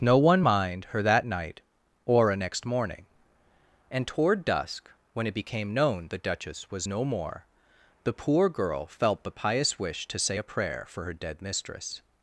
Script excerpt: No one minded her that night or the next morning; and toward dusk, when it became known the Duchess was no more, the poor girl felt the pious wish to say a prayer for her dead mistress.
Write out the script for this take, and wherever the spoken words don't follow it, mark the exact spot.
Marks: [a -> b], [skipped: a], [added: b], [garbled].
No one [minded -> mind] her that night or [the -> a] next morning; and toward dusk, when it became known the Duchess was no more, the poor girl felt the pious wish to say a prayer for her dead mistress.